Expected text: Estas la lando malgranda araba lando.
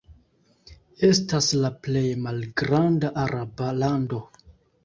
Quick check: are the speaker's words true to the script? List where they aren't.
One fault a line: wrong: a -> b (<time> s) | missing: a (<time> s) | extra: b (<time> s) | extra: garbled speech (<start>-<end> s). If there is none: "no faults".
wrong: lando -> plej (1.9 s)